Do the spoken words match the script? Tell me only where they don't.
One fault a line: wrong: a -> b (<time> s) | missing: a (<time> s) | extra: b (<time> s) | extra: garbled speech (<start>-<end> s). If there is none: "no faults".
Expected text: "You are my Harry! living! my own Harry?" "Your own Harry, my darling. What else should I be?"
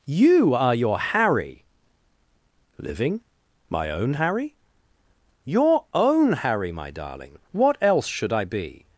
wrong: my -> your (0.7 s)